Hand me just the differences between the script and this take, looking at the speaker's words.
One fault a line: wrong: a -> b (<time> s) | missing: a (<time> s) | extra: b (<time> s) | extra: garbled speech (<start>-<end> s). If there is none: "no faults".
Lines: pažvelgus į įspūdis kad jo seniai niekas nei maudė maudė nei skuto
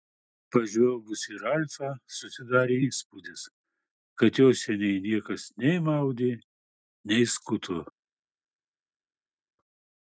extra: ralfą susidarė (1.4 s)
missing: maudė (6.3 s)